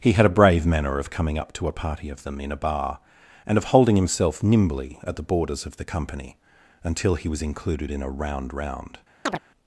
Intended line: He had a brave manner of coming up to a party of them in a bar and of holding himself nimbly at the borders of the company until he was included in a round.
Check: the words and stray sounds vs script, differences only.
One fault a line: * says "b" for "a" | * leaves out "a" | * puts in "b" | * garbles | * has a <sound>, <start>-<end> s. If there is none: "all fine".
* puts in "round"
* has a chirp, 9.3-9.4 s